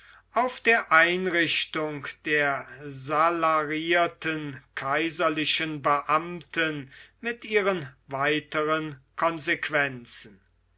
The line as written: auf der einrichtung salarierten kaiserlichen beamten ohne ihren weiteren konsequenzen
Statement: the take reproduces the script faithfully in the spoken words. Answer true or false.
false